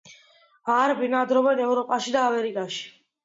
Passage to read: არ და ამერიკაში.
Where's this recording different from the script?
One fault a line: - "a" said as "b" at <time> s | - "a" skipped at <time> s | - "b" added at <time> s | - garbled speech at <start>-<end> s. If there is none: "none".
- "ბინადრობენ ევროპაში" added at 1.0 s